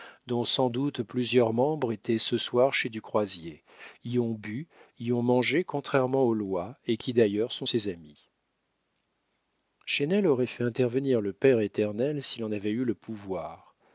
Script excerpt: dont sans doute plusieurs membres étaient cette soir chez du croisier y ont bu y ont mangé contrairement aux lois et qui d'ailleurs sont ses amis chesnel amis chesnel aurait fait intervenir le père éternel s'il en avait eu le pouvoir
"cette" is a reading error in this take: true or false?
true